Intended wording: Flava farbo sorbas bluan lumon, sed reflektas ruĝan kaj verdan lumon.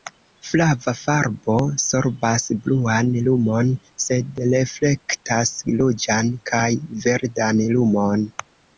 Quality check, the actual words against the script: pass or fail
pass